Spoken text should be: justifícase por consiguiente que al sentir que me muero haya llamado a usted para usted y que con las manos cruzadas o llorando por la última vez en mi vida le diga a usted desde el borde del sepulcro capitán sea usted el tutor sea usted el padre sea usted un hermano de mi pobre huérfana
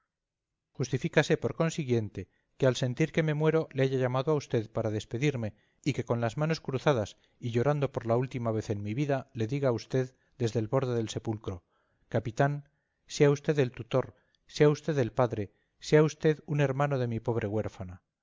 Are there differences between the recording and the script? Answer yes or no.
yes